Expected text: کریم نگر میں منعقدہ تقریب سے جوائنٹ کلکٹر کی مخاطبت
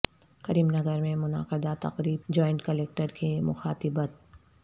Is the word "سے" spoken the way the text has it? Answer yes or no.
no